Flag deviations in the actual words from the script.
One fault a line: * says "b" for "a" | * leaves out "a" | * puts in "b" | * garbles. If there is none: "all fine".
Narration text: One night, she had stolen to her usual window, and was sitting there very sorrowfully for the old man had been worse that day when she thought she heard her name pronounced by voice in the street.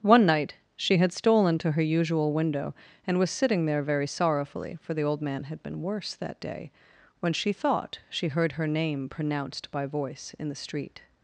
all fine